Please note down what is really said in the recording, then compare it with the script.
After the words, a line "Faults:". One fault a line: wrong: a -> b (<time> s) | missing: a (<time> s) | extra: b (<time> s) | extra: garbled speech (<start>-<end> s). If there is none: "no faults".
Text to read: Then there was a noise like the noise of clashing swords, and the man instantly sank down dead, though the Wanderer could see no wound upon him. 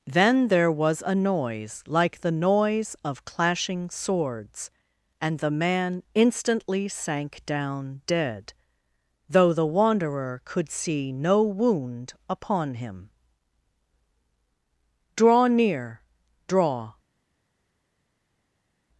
Then there was a noise like the noise of clashing swords, and the man instantly sank down dead, though the Wanderer could see no wound upon him. "Draw near! Draw
Faults:
extra: Draw near Draw (15.2 s)